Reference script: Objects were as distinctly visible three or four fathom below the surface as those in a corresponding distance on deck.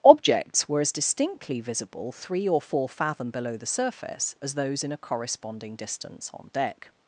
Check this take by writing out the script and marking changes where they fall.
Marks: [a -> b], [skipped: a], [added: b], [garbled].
Objects were as distinctly visible three or four fathom below the surface as those in a corresponding distance on deck.